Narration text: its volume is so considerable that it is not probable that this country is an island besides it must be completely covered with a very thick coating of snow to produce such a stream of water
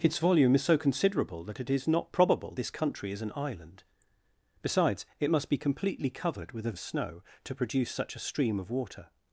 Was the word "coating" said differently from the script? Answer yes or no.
yes